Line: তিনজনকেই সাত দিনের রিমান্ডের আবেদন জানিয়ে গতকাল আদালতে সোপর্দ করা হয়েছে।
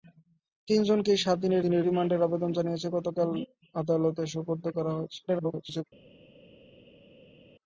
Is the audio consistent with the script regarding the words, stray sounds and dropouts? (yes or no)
no